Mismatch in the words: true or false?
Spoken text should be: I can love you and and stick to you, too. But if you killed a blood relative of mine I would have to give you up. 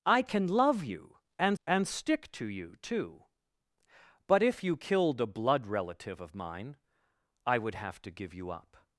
false